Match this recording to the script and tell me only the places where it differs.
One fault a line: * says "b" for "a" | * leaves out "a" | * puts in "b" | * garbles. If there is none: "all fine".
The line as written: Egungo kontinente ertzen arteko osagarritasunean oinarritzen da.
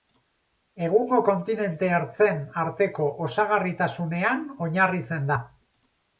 all fine